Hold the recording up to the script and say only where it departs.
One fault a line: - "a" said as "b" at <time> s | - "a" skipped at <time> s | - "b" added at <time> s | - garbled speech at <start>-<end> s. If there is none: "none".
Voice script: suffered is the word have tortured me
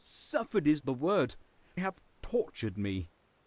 none